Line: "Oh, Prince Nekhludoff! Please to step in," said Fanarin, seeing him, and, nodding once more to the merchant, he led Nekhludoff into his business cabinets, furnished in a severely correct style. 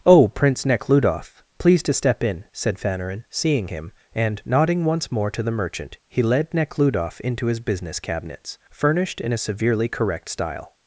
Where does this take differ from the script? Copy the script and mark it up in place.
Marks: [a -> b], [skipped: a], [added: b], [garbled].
"Oh, Prince Nekhludoff! Please to step in," said Fanarin, seeing him, and, nodding once more to the merchant, he led Nekhludoff into his business cabinets, furnished in a severely correct style.